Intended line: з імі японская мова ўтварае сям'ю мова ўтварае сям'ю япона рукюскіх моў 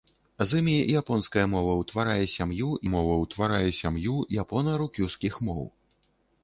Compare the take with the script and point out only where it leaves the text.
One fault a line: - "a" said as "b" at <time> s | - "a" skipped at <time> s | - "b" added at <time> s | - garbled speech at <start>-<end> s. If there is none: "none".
none